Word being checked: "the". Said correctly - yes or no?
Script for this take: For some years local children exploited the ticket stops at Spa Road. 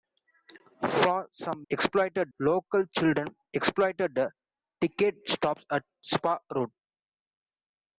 yes